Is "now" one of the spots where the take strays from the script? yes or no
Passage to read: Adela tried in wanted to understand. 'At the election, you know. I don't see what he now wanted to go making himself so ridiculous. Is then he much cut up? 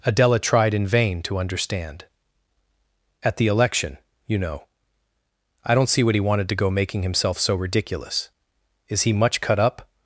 yes